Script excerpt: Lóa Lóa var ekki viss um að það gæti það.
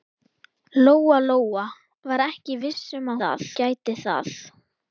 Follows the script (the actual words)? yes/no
yes